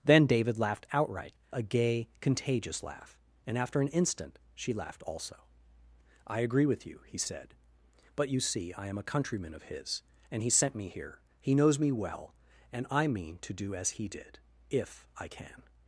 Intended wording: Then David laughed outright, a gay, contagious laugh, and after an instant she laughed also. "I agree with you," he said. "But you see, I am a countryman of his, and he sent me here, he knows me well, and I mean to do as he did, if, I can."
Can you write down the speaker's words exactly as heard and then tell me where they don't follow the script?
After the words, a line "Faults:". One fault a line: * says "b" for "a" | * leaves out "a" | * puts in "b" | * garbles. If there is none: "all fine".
Then David laughed outright, a gay, contagious laugh, and after an instant she laughed also. "I agree with you," he said. "But you see, I am a countryman of his, and he sent me here, he knows me well, and I mean to do as he did, if, I can."
Faults:
all fine